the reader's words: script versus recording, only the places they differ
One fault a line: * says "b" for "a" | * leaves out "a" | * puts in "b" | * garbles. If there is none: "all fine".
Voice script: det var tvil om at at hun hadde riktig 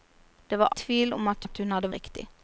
all fine